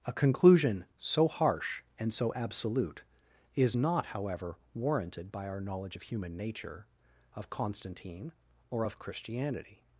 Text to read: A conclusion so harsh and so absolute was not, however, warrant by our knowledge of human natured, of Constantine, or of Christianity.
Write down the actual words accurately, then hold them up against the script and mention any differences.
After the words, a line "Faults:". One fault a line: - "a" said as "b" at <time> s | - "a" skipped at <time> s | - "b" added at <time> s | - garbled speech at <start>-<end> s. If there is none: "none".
A conclusion so harsh and so absolute is not, however, warranted by our knowledge of human nature, of Constantine, or of Christianity.
Faults:
- "was" said as "is" at 3.5 s
- "warrant" said as "warranted" at 4.7 s
- "natured" said as "nature" at 6.4 s